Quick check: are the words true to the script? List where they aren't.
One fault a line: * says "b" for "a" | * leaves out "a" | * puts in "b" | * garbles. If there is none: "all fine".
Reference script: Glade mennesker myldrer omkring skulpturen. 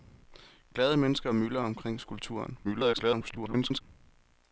* garbles